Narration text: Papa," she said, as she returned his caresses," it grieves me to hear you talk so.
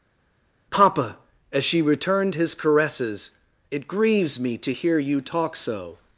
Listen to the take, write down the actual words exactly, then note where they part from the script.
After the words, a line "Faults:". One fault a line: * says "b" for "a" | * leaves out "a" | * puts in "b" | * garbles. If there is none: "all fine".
Papa," as she returned his caresses," it grieves me to hear you talk so.
Faults:
* leaves out "she said"